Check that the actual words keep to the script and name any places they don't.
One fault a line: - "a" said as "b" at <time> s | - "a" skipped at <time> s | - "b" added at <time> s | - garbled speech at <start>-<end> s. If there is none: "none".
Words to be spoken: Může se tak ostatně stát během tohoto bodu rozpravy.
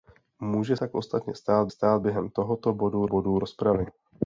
- "se" skipped at 0.8 s
- "stát" added at 1.7 s
- "bodu" added at 3.0 s